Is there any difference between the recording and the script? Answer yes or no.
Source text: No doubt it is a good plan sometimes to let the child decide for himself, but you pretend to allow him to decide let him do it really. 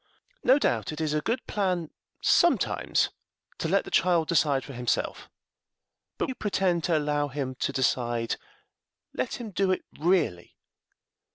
no